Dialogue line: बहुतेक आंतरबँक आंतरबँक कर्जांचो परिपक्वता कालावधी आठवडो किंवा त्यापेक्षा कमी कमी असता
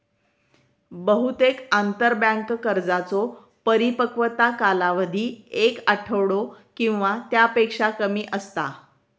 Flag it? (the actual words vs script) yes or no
yes